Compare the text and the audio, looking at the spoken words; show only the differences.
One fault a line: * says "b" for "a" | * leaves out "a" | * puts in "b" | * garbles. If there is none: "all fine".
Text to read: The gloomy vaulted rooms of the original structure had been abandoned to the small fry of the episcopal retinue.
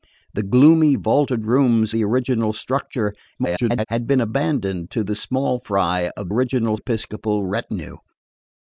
* leaves out "of"
* garbles
* says "original" for "the"